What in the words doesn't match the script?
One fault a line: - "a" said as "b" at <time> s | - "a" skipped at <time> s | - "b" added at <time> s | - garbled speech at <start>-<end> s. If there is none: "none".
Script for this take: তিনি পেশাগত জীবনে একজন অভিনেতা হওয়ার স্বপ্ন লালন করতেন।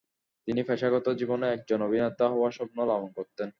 none